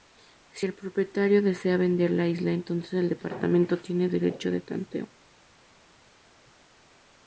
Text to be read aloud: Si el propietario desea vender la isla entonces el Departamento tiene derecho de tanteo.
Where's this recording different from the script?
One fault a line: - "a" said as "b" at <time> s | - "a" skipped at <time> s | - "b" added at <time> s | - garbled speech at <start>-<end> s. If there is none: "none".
none